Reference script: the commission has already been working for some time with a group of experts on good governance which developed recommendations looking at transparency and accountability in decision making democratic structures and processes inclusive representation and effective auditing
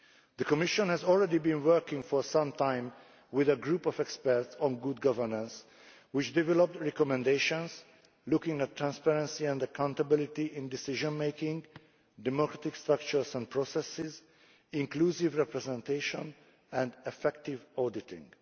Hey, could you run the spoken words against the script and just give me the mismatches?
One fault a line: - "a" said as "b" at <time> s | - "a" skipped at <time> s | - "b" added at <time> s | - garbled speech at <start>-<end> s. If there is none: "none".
none